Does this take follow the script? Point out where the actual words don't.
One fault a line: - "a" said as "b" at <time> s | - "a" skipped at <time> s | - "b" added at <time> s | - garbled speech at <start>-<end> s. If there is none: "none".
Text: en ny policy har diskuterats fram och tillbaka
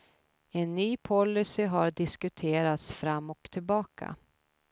none